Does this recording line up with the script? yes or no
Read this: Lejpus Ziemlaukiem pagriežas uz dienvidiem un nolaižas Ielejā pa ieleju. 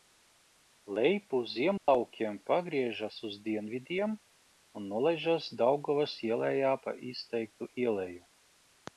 no